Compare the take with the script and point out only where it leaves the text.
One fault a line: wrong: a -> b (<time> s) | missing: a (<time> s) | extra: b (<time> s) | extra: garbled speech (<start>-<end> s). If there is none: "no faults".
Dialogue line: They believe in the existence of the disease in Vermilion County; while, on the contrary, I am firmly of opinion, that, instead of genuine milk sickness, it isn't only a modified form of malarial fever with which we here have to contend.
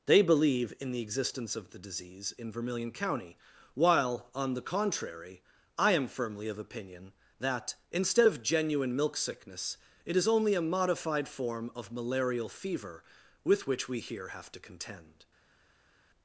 wrong: isn't -> is (10.1 s)